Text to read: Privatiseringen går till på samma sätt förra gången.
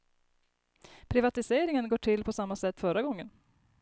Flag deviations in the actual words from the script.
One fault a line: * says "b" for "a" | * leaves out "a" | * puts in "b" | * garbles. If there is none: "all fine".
all fine